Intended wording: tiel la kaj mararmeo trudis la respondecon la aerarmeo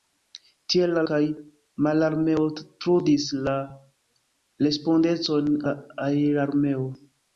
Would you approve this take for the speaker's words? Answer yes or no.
yes